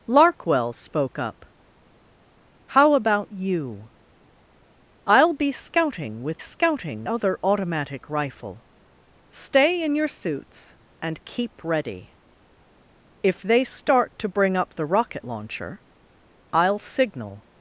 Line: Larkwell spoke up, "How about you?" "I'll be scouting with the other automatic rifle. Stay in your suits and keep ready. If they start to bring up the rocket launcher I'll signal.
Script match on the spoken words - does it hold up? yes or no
no